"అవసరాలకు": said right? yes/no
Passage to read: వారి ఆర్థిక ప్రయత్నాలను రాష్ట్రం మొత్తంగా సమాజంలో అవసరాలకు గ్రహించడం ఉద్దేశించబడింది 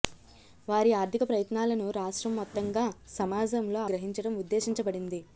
no